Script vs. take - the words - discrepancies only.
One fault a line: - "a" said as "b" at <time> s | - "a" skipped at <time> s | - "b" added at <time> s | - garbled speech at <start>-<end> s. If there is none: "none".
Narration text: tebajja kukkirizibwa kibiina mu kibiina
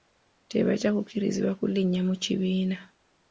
- "kibiina" said as "kulinnya" at 1.6 s